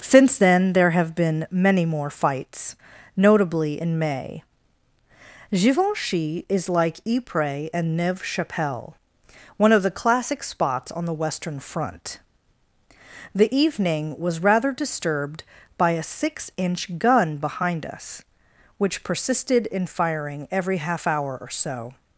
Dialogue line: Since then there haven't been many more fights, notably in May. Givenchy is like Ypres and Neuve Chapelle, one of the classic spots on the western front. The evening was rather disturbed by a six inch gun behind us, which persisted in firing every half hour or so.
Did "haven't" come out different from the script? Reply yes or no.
yes